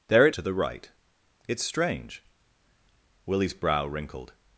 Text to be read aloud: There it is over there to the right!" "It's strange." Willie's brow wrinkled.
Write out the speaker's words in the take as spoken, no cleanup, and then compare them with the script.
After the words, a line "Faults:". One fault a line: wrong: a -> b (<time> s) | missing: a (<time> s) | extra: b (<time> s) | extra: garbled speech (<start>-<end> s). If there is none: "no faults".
There it to the right!" "It's strange." Willie's brow wrinkled.
Faults:
missing: is over there (0.3 s)